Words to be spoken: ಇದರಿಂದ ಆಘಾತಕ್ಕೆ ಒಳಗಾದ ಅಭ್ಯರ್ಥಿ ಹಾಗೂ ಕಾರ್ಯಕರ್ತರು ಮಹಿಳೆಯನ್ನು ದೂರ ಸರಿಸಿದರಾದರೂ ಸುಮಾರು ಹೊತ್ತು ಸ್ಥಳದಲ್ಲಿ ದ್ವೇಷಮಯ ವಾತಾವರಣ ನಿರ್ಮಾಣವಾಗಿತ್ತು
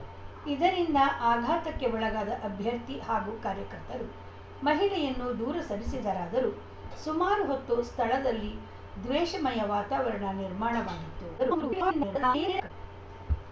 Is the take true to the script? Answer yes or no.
no